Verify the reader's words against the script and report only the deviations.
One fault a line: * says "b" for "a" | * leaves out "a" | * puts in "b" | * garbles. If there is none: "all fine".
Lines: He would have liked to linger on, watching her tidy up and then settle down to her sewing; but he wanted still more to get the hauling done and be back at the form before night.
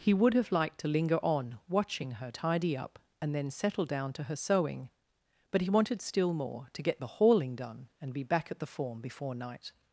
all fine